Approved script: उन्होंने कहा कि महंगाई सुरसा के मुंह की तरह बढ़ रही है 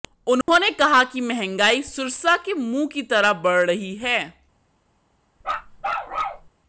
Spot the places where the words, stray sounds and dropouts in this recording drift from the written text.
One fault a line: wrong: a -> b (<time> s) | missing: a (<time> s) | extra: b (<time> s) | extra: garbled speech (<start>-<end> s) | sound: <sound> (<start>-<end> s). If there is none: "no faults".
sound: dropout (0.4-0.5 s)
sound: bark (5.4-6.5 s)